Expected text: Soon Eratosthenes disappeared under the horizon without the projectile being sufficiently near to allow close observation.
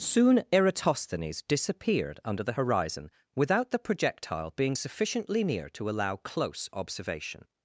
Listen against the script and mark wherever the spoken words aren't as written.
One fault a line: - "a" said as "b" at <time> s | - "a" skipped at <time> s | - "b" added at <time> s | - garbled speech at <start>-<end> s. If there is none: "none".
none